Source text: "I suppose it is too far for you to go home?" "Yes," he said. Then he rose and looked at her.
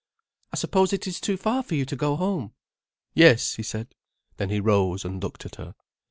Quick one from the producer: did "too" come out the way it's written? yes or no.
yes